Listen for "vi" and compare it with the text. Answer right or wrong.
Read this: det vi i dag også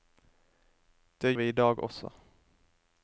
right